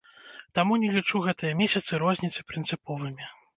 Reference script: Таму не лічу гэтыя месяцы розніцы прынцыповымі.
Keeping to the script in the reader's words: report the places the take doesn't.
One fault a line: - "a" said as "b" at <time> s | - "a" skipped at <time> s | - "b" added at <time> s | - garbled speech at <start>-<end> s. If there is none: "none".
none